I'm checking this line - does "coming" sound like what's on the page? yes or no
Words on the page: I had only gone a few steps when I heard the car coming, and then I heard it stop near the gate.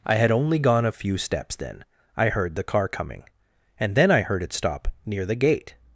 yes